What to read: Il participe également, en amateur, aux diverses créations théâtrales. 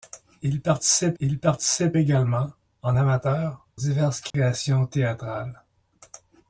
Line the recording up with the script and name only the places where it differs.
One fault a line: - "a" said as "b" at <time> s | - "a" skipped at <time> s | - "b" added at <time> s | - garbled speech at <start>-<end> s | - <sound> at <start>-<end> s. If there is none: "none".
- "il participe" added at 1.2 s
- "aux" skipped at 3.6 s
- dropout at 4.3-4.3 s